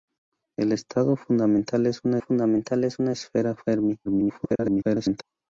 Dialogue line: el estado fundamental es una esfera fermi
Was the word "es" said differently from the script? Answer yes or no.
no